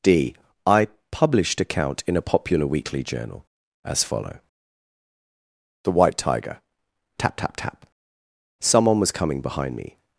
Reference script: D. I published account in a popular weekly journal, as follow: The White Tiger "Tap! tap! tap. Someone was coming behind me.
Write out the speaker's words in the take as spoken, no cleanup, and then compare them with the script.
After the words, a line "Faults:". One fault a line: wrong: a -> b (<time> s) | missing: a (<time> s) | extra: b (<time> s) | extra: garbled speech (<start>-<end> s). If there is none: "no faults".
D. I published account in a popular weekly journal, as follow: The White Tiger "Tap! tap! tap. Someone was coming behind me.
Faults:
no faults